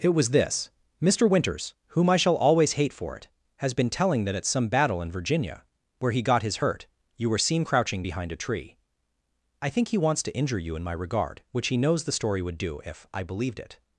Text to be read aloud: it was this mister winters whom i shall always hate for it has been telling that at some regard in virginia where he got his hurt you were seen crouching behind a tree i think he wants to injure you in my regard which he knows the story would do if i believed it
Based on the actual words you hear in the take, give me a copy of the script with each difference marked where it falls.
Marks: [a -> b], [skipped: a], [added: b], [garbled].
it was this mister winters whom i shall always hate for it has been telling that at some [regard -> battle] in virginia where he got his hurt you were seen crouching behind a tree i think he wants to injure you in my regard which he knows the story would do if i believed it